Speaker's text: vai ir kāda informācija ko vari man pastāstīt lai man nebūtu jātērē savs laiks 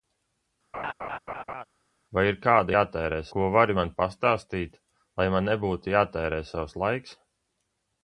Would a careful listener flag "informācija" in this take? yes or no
yes